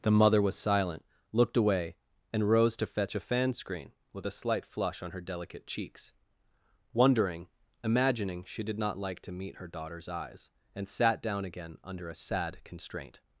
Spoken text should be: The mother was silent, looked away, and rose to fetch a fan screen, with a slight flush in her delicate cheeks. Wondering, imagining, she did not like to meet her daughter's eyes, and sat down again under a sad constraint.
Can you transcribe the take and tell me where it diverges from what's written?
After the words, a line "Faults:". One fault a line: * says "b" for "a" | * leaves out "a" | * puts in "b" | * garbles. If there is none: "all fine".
The mother was silent, looked away, and rose to fetch a fan screen, with a slight flush on her delicate cheeks. Wondering, imagining, she did not like to meet her daughter's eyes, and sat down again under a sad constraint.
Faults:
* says "on" for "in"